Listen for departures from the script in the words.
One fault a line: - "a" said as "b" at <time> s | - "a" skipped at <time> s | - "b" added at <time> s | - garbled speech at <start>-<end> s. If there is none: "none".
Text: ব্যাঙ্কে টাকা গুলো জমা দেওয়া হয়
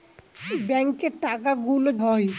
- "জমা দেওয়া" skipped at 1.9 s